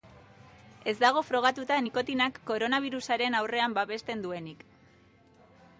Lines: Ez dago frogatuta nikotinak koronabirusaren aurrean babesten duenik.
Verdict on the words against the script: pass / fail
pass